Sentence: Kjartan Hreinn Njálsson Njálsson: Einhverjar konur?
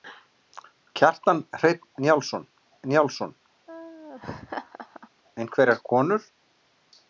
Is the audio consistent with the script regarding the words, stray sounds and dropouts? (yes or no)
no